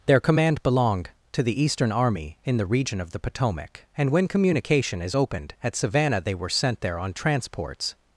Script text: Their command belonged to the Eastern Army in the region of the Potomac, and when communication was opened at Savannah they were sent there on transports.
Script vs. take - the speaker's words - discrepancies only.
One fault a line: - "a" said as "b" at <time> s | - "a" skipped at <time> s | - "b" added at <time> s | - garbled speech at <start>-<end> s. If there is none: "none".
- "was" said as "is" at 5.0 s